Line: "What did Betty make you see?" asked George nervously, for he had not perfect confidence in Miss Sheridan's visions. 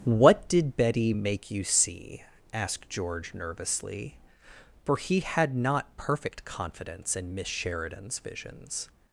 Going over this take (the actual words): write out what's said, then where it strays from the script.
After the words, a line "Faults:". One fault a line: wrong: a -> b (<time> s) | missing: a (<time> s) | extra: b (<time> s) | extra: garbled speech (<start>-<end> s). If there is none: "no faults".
"What did Betty make you see?" asked George nervously, for he had not perfect confidence in Miss Sheridan's visions.
Faults:
no faults